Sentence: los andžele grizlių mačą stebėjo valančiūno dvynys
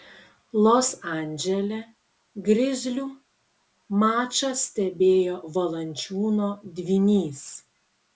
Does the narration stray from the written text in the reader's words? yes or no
no